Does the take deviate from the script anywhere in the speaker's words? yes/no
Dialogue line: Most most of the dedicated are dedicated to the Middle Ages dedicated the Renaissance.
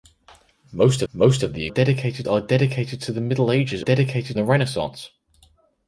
no